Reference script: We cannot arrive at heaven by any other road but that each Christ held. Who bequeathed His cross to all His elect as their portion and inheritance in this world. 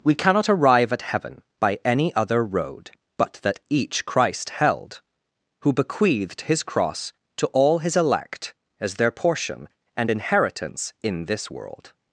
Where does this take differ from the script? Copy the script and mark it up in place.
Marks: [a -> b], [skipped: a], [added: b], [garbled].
We cannot arrive at heaven by any other road but that each Christ held. Who bequeathed His cross to all His elect as their portion and inheritance in this world.